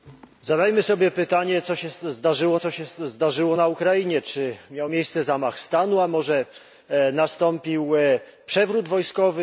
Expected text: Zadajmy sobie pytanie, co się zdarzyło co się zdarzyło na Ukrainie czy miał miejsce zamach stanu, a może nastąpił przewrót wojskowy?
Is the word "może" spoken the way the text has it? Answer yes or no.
yes